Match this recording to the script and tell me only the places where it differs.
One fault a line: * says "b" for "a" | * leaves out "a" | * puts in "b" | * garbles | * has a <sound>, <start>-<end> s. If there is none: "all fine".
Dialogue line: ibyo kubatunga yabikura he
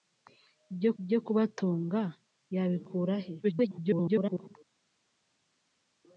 * puts in "ibyo"
* garbles